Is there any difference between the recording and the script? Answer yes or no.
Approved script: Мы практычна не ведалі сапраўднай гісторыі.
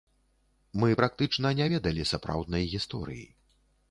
no